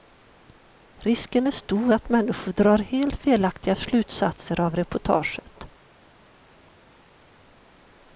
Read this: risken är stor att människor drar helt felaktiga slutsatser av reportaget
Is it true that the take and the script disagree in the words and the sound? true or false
false